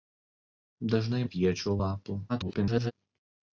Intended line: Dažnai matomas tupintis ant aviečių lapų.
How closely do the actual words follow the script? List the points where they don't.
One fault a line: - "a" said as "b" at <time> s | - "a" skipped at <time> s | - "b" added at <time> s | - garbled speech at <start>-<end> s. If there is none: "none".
- "matomas tupintis ant" skipped at 1.2 s
- garbled speech at 2.3-2.9 s